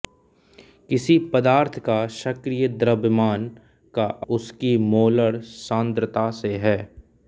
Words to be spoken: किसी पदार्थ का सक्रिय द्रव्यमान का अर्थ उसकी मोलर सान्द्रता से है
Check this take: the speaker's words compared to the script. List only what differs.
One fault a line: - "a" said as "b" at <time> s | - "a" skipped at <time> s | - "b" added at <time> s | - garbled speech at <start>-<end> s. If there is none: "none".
- "अर्थ" skipped at 4.0 s